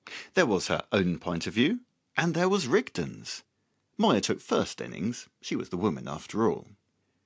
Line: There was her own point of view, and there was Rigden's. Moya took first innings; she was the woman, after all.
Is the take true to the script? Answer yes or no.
yes